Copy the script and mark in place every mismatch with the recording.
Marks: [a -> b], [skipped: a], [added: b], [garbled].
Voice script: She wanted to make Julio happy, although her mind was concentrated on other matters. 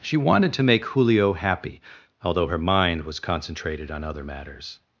She wanted to make Julio happy, although her mind was concentrated on other matters.